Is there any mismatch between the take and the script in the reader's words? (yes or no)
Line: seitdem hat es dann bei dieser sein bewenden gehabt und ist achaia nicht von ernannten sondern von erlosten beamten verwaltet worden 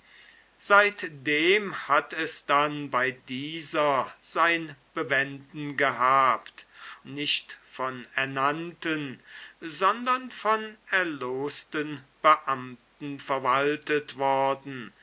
yes